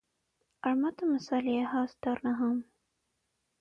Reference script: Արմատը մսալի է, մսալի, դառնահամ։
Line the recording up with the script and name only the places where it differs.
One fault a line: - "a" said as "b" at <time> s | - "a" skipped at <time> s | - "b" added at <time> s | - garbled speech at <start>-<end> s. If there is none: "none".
- "մսալի" said as "հաստ" at 1.8 s